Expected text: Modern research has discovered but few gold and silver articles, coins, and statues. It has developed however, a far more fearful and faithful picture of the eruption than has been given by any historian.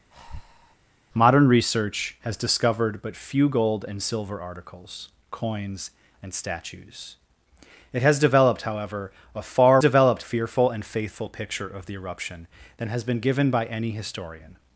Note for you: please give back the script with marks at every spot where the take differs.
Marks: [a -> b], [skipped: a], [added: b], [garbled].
Modern research has discovered but few gold and silver articles, coins, and statues. It has developed however, a far [more -> developed] fearful and faithful picture of the eruption than has been given by any historian.